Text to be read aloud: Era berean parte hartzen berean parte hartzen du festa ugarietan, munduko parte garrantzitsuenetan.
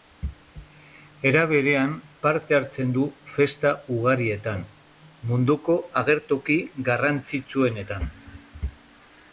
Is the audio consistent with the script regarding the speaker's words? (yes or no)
no